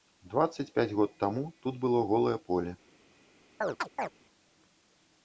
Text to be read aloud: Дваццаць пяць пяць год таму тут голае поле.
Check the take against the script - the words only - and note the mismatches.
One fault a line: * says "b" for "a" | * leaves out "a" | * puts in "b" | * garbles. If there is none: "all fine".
* leaves out "пяць"
* puts in "было"